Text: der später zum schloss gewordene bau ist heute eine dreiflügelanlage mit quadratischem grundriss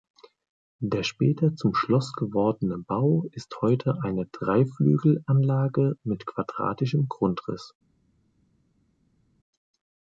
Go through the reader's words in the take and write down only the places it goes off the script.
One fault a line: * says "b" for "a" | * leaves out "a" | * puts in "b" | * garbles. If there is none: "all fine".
all fine